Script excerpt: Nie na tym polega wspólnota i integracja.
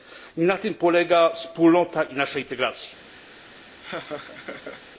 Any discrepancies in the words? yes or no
yes